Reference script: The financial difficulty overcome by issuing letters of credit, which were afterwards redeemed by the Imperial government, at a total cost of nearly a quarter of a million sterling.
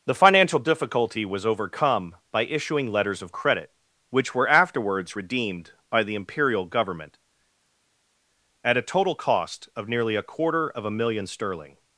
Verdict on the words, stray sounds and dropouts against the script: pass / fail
fail